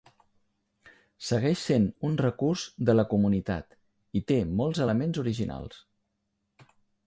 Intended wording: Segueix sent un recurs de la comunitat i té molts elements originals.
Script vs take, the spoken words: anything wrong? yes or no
no